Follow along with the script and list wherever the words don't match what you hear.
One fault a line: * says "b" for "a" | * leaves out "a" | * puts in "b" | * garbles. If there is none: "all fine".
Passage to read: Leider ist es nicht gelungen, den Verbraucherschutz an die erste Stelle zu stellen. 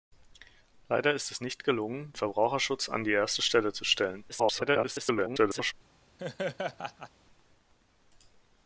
* leaves out "den"
* garbles